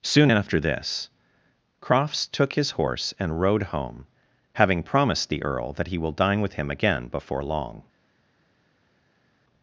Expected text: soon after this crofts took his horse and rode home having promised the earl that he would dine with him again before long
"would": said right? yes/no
no